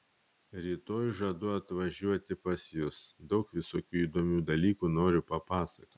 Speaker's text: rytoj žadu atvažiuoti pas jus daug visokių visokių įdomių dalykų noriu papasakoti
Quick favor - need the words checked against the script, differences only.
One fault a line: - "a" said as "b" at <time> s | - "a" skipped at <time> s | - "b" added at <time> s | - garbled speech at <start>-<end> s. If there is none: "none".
- "visokių" skipped at 4.0 s